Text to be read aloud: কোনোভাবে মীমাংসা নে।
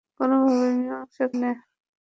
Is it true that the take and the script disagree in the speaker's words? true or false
false